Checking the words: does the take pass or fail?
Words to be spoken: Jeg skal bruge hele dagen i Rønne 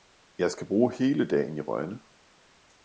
pass